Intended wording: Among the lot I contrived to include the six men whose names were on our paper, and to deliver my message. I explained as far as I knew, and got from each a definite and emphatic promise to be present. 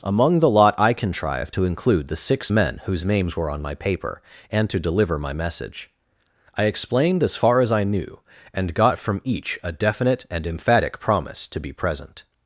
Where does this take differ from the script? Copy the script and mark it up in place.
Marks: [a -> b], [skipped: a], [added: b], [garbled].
Among the lot I contrived to include the six men whose names were on [our -> my] paper, and to deliver my message. I explained as far as I knew, and got from each a definite and emphatic promise to be present.